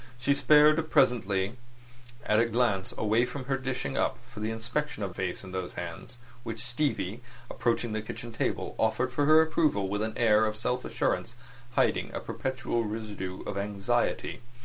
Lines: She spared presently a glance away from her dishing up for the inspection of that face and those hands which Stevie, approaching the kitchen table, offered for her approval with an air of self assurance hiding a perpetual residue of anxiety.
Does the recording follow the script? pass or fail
fail